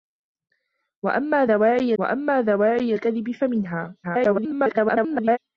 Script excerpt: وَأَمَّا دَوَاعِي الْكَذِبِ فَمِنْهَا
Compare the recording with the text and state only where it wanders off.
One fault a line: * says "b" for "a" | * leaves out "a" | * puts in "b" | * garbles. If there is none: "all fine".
* puts in "وَأَمَّا دَوَاعِي"
* garbles